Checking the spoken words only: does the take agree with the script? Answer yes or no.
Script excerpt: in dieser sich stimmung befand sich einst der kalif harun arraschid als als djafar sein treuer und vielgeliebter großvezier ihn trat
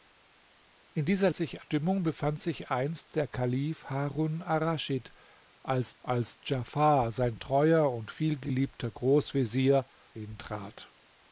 yes